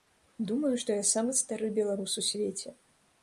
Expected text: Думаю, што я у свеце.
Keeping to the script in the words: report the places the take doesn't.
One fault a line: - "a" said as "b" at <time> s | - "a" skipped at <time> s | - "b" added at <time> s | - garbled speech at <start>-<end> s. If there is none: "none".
- "самы стары беларус" added at 1.1 s